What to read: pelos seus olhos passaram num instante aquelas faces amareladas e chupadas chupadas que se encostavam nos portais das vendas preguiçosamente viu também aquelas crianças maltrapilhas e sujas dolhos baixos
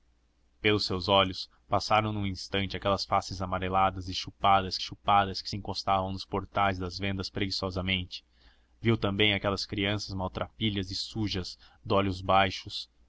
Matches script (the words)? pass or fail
pass